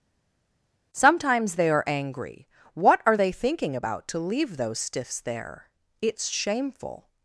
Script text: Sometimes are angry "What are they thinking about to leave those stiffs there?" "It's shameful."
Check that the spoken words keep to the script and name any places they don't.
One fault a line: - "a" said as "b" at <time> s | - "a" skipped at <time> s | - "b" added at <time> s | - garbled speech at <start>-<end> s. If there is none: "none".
- "they" added at 1.6 s